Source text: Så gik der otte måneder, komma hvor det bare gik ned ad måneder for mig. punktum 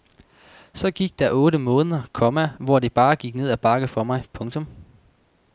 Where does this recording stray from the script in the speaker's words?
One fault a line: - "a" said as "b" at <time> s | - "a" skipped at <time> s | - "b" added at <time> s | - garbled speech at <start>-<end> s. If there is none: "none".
- "måneder" said as "bakke" at 3.6 s